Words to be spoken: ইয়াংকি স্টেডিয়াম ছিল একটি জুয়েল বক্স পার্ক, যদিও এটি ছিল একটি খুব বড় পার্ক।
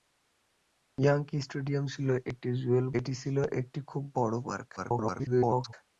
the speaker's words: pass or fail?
fail